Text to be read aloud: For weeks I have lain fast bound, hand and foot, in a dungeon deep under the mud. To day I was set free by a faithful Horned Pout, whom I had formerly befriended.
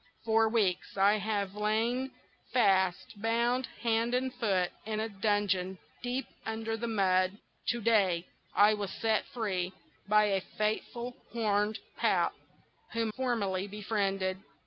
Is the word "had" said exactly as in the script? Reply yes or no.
no